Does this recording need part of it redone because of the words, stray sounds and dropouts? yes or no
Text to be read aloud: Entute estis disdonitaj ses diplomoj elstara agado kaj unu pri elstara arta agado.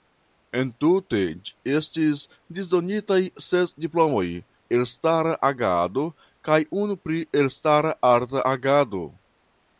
no